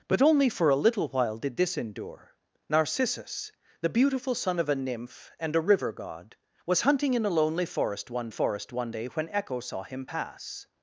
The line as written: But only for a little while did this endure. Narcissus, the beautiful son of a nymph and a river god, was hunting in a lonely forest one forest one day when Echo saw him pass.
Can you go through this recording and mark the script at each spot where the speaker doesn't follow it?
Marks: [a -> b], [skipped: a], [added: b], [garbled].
But only for a little while did this endure. Narcissus, the beautiful son of a nymph and a river god, was hunting in a lonely forest one forest one day when Echo saw him pass.